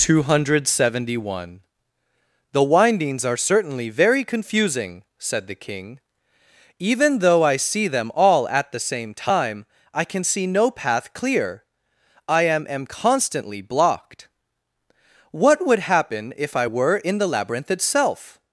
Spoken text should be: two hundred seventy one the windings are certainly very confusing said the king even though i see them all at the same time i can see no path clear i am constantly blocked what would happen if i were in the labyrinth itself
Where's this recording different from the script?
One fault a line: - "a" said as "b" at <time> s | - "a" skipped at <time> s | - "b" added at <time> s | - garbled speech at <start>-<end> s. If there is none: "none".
- "am" added at 12.7 s